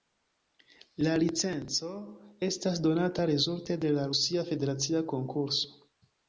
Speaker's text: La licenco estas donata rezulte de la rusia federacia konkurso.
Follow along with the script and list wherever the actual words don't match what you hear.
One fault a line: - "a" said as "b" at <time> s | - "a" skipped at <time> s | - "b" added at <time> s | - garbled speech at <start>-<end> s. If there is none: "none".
none